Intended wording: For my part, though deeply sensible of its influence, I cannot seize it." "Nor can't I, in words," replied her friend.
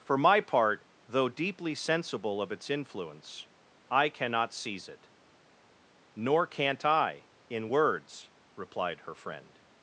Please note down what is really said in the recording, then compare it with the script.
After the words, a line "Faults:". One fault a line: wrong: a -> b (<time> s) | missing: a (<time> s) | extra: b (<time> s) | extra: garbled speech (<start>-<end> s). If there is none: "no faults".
For my part, though deeply sensible of its influence, I cannot seize it." "Nor can't I, in words," replied her friend.
Faults:
no faults